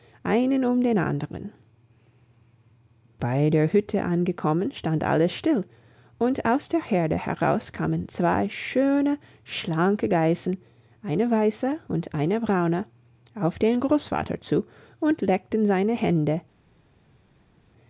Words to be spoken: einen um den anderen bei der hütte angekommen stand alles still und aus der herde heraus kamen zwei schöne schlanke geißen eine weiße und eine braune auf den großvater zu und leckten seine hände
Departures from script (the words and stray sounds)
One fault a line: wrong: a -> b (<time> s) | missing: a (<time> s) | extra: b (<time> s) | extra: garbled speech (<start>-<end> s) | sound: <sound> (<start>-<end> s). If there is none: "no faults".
no faults